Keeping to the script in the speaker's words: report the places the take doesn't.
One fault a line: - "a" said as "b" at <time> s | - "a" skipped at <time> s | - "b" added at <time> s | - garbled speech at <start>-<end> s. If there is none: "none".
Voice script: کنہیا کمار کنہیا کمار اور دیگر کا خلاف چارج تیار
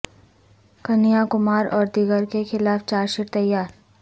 - "کنہیا کمار" skipped at 1.6 s
- "کا" said as "کے" at 2.3 s
- "شیٹ" added at 3.1 s